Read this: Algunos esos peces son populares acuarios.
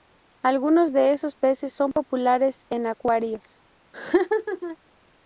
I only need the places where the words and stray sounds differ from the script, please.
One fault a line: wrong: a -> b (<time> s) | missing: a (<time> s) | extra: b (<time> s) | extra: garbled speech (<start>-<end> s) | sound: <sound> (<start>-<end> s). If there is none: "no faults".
extra: de (0.9 s)
extra: en (2.7 s)
sound: laugh (3.9-4.8 s)